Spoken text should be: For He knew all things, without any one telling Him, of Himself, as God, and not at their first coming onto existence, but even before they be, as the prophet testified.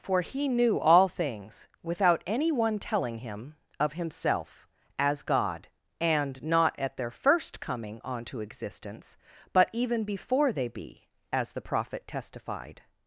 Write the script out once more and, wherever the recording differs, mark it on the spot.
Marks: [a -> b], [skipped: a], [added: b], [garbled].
For He knew all things, without any one telling Him, of Himself, as God, and not at their first coming onto existence, but even before they be, as the prophet testified.